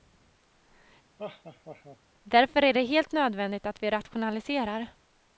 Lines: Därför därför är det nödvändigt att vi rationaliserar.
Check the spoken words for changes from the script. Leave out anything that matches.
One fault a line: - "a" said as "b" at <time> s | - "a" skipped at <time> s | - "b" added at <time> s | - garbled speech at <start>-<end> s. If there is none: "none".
- "därför" skipped at 2.6 s
- "helt" added at 2.9 s